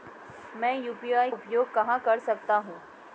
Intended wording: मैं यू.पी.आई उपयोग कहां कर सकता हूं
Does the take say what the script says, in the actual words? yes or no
yes